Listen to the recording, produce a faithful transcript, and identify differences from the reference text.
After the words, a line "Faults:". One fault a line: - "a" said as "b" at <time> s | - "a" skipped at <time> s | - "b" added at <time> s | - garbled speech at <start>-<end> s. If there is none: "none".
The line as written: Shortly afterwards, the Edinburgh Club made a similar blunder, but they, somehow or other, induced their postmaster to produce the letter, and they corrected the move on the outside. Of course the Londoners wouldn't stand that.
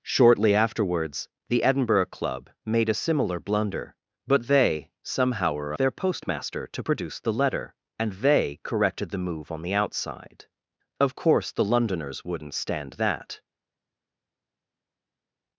Shortly afterwards, the Edinburgh Club made a similar blunder, but they, somehow or their postmaster to produce the letter, and they corrected the move on the outside. Of course the Londoners wouldn't stand that.
Faults:
- "other induced" skipped at 5.7 s